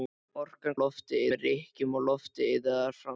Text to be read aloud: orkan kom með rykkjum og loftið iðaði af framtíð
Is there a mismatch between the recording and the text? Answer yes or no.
yes